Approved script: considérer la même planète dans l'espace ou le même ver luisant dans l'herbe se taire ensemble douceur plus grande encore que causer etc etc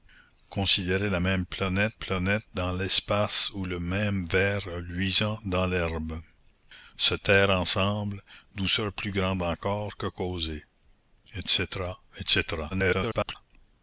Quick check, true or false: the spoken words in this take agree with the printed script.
false